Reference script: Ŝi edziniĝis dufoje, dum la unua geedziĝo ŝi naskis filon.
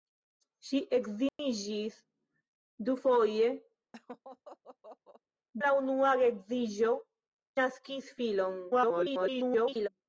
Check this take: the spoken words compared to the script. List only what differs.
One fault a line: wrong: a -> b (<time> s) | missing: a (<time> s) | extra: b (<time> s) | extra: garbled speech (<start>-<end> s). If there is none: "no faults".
missing: dum (3.5 s)
missing: ŝi (7.0 s)
extra: garbled speech (8.7-9.9 s)